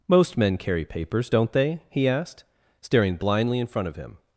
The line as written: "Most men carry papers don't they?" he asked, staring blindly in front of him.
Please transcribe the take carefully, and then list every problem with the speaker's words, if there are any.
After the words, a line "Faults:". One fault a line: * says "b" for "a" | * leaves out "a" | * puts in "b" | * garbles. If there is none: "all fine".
"Most men carry papers don't they?" he asked, staring blindly in front of him.
Faults:
all fine